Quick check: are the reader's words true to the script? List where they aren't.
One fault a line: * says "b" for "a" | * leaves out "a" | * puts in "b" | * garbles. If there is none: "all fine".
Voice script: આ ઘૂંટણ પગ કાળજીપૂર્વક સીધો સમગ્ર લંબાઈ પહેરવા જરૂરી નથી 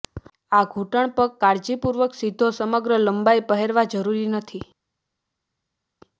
all fine